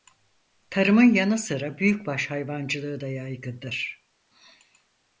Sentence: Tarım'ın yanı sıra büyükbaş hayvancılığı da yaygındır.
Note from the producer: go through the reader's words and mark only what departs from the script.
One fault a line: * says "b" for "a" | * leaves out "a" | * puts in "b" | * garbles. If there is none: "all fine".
all fine